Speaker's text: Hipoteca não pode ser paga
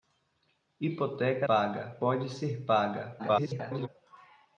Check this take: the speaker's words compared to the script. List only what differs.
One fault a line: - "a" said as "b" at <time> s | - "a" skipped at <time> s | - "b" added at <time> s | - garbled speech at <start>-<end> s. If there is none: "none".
- "não" said as "paga" at 1.4 s
- garbled speech at 3.2-3.9 s